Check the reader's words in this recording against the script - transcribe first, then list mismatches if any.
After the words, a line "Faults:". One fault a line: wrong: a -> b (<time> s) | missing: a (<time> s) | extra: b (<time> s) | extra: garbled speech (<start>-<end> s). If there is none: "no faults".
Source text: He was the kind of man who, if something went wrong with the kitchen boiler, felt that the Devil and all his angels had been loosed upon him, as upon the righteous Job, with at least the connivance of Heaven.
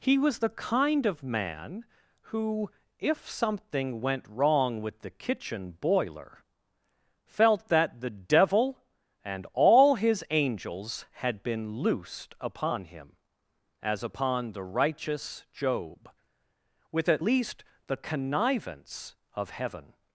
He was the kind of man who, if something went wrong with the kitchen boiler, felt that the Devil and all his angels had been loosed upon him, as upon the righteous Job, with at least the connivance of Heaven.
Faults:
no faults